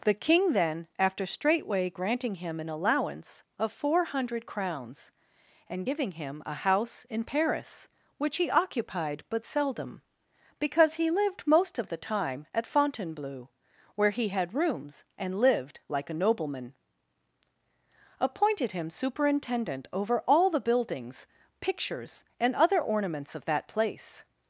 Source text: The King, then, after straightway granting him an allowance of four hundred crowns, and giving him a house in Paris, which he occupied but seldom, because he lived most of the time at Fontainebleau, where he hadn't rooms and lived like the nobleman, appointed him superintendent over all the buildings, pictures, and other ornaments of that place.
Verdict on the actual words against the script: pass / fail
fail